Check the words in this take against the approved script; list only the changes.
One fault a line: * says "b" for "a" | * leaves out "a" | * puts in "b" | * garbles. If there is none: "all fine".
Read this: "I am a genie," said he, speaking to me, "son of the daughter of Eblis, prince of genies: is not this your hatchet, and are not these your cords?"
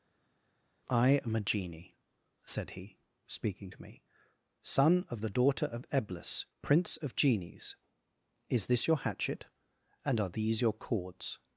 * leaves out "not"
* leaves out "not"